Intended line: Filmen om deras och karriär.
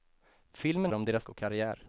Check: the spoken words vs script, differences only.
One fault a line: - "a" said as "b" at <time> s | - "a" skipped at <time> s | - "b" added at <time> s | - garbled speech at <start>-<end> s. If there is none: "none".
none